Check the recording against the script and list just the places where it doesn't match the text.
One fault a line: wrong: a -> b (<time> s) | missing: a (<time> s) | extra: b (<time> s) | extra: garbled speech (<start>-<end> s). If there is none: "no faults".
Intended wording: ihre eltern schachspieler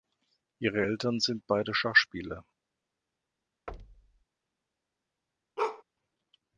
extra: sind beide (1.2 s)